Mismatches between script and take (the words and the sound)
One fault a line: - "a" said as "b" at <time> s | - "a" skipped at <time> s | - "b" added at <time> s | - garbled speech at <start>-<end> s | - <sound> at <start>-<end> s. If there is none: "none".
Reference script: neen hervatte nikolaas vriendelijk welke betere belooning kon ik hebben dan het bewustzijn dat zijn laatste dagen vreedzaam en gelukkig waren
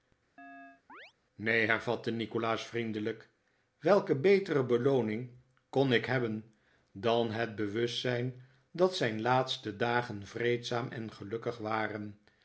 - chirp at 0.4-1.1 s